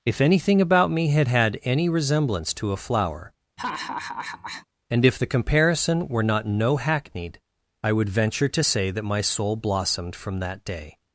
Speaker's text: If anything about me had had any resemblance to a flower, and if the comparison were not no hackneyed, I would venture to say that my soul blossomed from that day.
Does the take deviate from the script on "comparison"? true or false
false